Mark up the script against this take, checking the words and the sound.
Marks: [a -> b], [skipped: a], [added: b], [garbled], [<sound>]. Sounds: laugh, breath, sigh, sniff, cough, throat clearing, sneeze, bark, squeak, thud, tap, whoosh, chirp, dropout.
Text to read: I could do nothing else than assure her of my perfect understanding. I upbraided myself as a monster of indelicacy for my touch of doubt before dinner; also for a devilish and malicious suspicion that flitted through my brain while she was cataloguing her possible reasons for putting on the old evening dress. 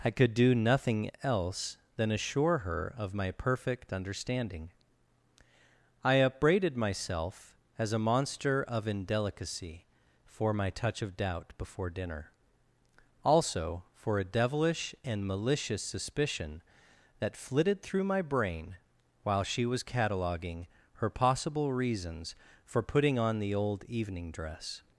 I could do nothing else than assure her of my perfect understanding. I upbraided myself as a monster of indelicacy for my touch of doubt before dinner; also for a devilish and malicious suspicion that flitted through my brain while she was cataloguing her possible reasons for putting on the old evening dress.